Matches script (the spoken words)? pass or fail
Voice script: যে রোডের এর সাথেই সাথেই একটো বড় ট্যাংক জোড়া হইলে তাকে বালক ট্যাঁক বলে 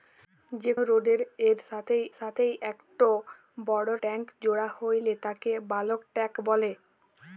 pass